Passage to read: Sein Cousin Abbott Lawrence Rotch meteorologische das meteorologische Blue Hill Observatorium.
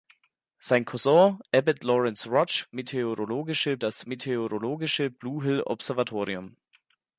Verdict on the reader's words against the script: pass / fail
pass